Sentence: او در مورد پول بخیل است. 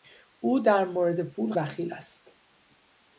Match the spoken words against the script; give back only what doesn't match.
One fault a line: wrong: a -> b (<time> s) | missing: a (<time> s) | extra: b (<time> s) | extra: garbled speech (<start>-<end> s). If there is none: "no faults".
no faults